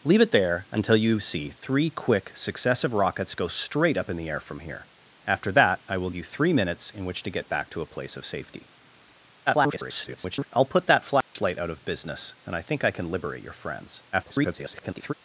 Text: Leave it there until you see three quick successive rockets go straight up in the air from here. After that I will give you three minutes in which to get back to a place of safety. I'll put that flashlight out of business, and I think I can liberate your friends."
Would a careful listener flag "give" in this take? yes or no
yes